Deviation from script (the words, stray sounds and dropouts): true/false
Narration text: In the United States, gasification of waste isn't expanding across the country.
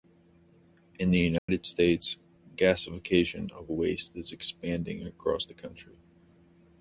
true